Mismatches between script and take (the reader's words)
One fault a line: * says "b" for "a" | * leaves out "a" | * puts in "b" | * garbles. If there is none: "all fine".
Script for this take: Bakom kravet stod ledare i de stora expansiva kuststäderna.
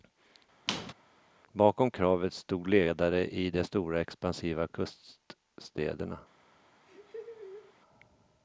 all fine